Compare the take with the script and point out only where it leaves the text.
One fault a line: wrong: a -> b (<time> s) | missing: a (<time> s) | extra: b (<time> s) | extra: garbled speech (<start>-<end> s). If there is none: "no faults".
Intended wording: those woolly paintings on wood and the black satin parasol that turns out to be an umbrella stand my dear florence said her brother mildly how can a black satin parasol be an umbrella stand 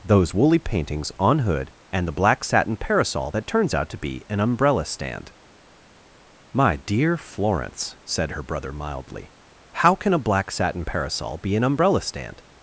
wrong: wood -> hood (1.4 s)